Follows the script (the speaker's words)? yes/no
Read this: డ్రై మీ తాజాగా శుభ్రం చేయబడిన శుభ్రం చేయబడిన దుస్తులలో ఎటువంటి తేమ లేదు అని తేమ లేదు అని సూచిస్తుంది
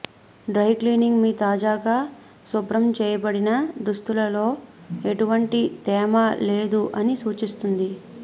no